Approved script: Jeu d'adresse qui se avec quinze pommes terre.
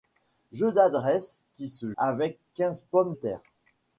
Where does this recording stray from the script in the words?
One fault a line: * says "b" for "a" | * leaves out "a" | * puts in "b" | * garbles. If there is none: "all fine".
all fine